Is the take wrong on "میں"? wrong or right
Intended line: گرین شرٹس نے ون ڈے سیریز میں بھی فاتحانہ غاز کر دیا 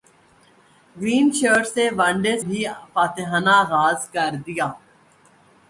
wrong